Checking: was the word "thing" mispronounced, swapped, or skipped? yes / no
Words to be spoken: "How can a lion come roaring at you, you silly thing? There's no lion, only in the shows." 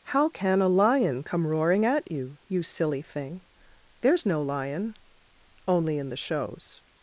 no